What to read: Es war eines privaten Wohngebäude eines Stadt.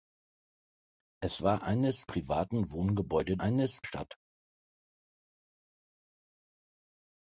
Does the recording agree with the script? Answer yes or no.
yes